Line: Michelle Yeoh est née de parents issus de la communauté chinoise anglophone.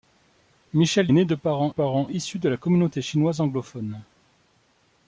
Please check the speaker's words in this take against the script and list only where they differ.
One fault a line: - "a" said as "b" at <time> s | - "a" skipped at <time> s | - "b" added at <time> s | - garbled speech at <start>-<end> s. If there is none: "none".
- "Yeoh est" skipped at 1.1 s
- "parents" added at 1.7 s